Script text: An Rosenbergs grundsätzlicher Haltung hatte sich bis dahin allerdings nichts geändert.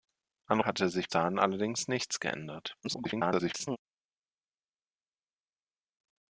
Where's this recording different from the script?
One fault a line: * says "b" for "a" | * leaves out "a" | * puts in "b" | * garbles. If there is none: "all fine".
* leaves out "Rosenbergs grundsätzlicher Haltung"
* leaves out "bis"
* garbles